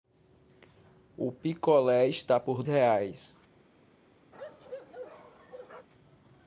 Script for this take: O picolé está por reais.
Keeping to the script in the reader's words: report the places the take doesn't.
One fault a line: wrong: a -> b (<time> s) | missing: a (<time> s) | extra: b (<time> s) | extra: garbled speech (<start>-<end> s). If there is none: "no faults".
no faults